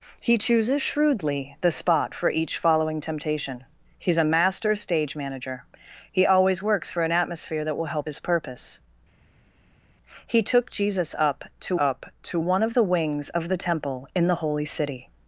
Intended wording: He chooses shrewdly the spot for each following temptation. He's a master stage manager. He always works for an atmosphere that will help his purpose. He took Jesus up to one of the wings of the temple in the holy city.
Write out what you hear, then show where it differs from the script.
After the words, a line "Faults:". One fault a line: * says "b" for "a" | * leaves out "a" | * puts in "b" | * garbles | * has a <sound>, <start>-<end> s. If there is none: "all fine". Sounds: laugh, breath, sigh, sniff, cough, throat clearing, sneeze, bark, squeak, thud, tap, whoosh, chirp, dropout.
He chooses shrewdly the spot for each following temptation. He's a master stage manager. He always works for an atmosphere that will help his purpose. He took Jesus up to up to one of the wings of the temple in the holy city.
Faults:
* puts in "up to"